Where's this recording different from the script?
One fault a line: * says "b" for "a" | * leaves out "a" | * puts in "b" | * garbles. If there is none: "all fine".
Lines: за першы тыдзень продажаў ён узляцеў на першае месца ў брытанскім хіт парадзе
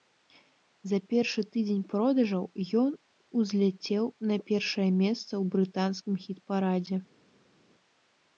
all fine